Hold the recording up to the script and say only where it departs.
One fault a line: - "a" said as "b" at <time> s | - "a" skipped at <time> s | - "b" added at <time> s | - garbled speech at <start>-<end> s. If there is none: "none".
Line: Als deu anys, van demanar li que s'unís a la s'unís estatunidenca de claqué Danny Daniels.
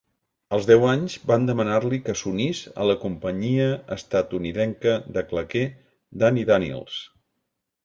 - "s'unís" said as "companyia" at 3.0 s